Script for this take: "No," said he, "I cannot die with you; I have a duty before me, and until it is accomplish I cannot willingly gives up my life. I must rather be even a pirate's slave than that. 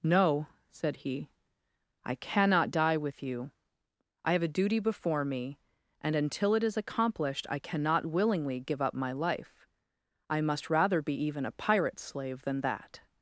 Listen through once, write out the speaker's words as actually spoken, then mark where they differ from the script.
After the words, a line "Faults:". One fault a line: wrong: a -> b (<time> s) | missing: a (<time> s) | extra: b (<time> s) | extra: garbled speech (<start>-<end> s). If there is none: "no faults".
"No," said he, "I cannot die with you; I have a duty before me, and until it is accomplished I cannot willingly give up my life. I must rather be even a pirate's slave than that.
Faults:
wrong: accomplish -> accomplished (6.8 s)
wrong: gives -> give (8.6 s)